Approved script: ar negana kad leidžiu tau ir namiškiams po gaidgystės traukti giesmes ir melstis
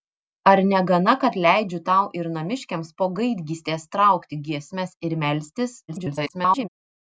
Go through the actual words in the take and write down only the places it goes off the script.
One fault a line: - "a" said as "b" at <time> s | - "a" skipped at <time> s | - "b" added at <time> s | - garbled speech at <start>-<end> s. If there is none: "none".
- garbled speech at 5.9-6.7 s